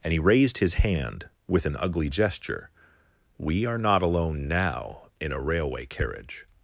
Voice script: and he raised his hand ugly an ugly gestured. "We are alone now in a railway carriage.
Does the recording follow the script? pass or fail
fail